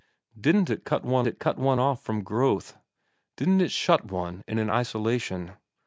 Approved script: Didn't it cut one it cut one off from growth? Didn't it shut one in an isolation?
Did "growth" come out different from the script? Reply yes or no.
no